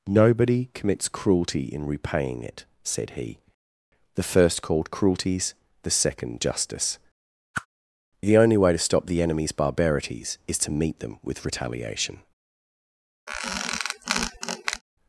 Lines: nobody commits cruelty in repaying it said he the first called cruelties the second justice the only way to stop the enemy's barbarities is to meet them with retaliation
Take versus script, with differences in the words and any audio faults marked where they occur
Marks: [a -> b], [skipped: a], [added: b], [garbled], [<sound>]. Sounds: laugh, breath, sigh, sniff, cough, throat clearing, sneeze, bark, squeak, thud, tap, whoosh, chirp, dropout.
nobody commits cruelty in repaying it said he the first called cruelties the second justice [whoosh] the only way to stop the enemy's barbarities is to meet them with retaliation [squeak]